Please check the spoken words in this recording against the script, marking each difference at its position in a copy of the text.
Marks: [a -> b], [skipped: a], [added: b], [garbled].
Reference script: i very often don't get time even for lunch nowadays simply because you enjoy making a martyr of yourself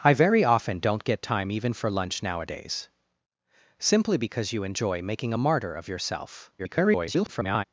i very often don't get time even for lunch nowadays simply because you enjoy making a martyr of yourself [garbled]